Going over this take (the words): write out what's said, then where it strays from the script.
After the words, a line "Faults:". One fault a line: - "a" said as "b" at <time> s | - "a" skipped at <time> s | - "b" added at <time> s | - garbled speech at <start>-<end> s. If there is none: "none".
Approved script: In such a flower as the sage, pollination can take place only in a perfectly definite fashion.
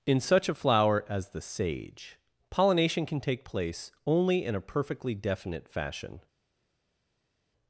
In such a flower as the sage, pollination can take place only in a perfectly definite fashion.
Faults:
none